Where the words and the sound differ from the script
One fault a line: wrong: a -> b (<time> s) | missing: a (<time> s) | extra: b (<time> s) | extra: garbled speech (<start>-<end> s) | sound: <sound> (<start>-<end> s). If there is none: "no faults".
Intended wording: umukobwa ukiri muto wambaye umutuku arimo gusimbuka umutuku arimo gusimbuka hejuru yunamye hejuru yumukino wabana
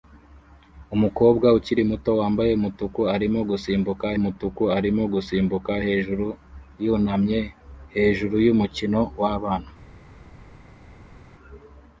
no faults